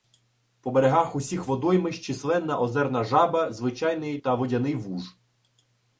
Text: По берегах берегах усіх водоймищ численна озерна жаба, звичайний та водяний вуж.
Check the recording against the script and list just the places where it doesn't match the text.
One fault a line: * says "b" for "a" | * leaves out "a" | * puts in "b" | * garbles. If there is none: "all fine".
* leaves out "берегах"